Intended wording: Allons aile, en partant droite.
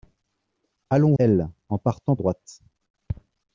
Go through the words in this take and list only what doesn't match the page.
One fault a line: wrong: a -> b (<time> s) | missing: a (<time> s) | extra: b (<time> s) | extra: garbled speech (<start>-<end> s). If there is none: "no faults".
no faults